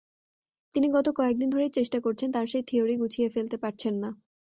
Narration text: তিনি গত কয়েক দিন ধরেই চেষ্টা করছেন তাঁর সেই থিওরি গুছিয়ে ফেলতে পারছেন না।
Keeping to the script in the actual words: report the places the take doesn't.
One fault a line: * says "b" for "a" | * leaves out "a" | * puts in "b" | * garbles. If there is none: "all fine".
all fine